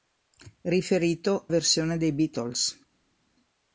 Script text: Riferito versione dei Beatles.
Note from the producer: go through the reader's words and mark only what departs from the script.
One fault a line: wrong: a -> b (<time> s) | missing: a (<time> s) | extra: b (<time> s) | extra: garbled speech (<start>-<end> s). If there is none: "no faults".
no faults